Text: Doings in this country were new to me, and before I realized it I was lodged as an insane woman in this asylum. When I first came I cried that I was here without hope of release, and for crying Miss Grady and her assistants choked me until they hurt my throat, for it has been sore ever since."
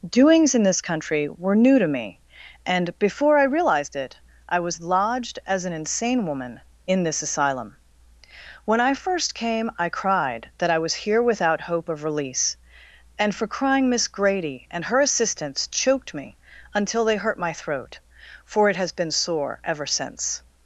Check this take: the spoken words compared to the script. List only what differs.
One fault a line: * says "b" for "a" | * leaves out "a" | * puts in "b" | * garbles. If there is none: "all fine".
all fine